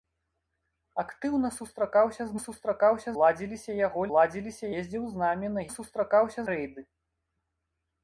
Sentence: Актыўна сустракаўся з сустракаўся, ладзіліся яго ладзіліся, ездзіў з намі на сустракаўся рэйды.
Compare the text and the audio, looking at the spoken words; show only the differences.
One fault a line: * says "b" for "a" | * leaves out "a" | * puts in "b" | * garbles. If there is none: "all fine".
all fine